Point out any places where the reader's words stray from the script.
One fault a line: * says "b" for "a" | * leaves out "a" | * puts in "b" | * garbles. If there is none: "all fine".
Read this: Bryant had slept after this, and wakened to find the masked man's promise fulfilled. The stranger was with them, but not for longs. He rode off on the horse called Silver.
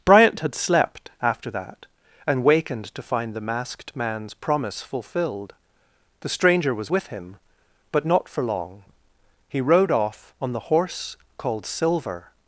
* says "that" for "this"
* says "him" for "them"
* says "long" for "longs"